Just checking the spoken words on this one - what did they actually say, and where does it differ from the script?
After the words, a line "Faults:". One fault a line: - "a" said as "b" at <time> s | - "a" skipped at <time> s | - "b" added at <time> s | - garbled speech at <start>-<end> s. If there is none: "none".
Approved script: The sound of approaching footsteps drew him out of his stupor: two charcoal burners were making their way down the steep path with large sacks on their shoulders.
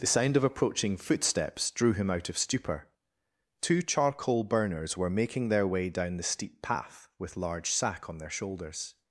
The sound of approaching footsteps drew him out of stupor: two charcoal burners were making their way down the steep path with large sack on their shoulders.
Faults:
- "his" skipped at 2.4 s
- "sacks" said as "sack" at 7.7 s